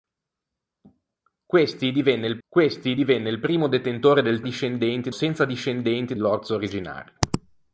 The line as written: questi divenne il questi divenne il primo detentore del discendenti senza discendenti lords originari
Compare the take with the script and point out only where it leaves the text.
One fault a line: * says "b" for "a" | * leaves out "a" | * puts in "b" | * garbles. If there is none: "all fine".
all fine